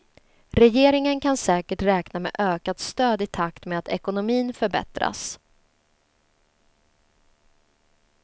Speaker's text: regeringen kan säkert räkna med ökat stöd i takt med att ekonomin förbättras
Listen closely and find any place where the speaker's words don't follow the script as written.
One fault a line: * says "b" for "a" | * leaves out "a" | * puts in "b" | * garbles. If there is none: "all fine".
all fine